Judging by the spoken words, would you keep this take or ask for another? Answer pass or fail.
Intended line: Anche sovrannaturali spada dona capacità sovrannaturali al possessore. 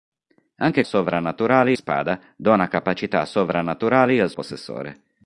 pass